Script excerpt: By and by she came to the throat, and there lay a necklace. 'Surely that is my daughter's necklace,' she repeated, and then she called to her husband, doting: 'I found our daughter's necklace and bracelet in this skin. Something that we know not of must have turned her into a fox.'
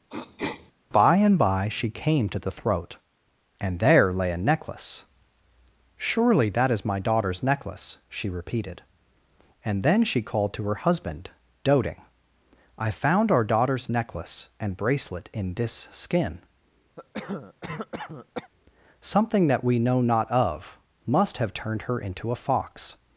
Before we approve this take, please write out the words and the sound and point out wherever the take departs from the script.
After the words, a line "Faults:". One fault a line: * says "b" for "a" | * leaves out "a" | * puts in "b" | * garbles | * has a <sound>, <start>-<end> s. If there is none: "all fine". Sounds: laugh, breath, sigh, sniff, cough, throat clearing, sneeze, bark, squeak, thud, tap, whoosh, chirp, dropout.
By and by she came to the throat, and there lay a necklace. 'Surely that is my daughter's necklace,' she repeated, and then she called to her husband, doting: 'I found our daughter's necklace and bracelet in this skin. Something that we know not of must have turned her into a fox.'
Faults:
* has a throat clearing, 0.1-0.7 s
* has a cough, 17.0-18.5 s